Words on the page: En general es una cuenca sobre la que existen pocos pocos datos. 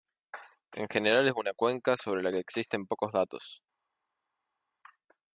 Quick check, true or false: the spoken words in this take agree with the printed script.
false